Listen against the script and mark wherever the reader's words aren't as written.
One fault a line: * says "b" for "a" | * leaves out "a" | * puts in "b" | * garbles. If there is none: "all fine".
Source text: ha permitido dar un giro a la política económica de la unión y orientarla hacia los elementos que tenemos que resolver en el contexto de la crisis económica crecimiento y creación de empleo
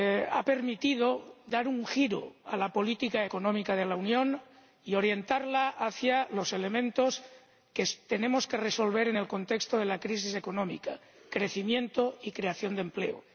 all fine